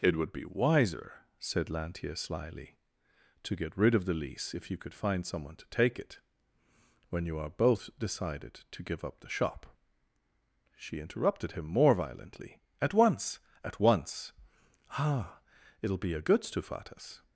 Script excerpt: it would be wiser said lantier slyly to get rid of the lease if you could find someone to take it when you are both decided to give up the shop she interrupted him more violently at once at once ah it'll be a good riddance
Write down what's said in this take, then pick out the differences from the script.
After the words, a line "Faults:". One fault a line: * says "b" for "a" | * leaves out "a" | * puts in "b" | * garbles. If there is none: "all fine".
it would be wiser said lantier slyly to get rid of the lease if you could find someone to take it when you are both decided to give up the shop she interrupted him more violently at once at once ah it'll be a good stufatas
Faults:
* says "stufatas" for "riddance"